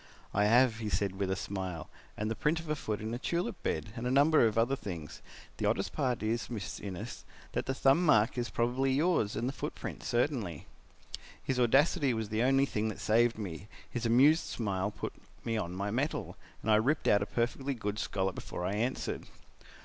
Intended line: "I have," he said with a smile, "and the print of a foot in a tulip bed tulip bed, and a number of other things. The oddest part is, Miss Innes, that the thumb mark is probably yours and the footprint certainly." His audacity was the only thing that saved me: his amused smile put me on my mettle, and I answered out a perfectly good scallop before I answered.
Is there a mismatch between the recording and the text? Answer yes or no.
yes